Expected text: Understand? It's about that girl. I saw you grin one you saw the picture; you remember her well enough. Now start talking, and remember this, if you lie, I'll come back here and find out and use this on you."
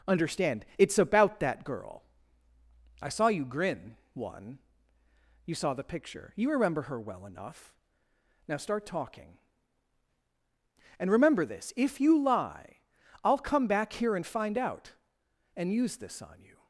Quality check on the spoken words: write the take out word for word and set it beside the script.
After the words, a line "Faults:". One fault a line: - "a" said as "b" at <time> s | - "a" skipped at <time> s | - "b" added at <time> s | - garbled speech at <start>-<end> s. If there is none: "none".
Understand? It's about that girl. I saw you grin one you saw the picture; you remember her well enough. Now start talking, and remember this, if you lie, I'll come back here and find out and use this on you."
Faults:
none